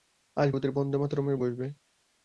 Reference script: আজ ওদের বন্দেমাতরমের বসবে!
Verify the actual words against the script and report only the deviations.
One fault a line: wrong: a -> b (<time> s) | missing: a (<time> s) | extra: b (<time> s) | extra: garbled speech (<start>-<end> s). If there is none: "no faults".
no faults